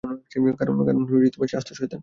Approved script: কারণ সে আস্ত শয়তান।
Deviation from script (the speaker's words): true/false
false